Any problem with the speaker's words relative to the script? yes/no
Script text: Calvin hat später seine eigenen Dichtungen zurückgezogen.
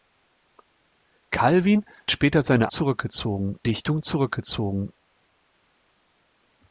yes